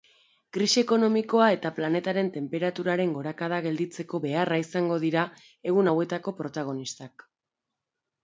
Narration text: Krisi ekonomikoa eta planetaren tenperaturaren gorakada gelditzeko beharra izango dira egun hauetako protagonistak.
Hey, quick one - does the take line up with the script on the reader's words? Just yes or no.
yes